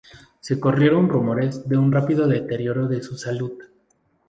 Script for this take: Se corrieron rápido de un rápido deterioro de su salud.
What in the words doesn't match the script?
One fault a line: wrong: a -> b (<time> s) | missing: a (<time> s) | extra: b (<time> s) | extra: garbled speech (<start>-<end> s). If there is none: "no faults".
wrong: rápido -> rumores (1.1 s)